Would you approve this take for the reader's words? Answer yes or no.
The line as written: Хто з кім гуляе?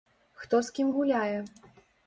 yes